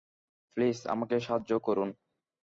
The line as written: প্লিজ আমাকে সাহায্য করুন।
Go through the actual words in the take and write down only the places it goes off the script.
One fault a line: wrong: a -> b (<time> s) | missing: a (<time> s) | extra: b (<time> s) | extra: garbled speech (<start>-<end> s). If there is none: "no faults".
no faults